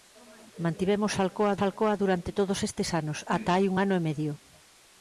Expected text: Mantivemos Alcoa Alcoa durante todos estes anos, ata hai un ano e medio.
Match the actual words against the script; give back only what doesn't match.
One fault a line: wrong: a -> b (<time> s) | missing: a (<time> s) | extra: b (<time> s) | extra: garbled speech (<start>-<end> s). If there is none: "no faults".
no faults